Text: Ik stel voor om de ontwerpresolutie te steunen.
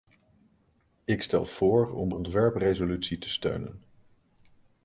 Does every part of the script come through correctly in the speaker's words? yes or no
no